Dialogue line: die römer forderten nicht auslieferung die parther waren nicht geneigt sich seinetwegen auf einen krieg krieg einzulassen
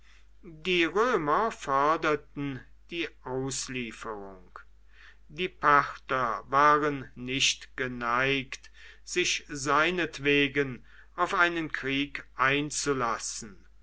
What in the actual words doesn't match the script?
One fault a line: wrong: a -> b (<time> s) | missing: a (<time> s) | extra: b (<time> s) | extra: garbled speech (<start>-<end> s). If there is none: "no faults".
wrong: nicht -> die (2.9 s)
missing: krieg (12.2 s)